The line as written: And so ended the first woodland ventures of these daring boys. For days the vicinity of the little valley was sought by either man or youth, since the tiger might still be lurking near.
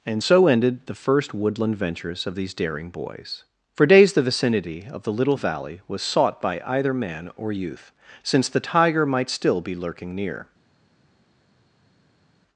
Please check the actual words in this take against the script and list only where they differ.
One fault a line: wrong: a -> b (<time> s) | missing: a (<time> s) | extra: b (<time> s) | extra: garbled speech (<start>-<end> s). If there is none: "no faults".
no faults